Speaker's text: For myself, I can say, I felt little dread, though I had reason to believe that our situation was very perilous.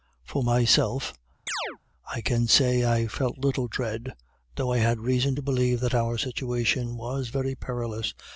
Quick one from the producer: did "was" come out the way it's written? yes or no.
yes